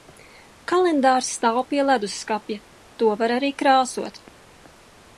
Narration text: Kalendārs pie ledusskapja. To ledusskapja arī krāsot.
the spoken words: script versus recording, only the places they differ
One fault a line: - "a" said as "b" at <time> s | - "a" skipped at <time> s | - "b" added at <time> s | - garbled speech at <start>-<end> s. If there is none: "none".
- "stāv" added at 1.4 s
- "ledusskapja" said as "var" at 3.2 s